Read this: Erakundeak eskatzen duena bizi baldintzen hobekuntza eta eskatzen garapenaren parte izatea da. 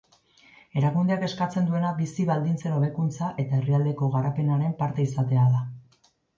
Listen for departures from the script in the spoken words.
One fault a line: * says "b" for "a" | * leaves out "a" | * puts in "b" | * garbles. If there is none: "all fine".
* says "herrialdeko" for "eskatzen"